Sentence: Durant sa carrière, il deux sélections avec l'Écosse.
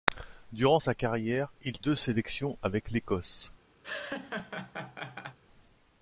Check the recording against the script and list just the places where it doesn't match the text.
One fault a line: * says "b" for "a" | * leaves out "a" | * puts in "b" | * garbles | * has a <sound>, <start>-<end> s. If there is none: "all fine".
* has a laugh, 3.8-5.4 s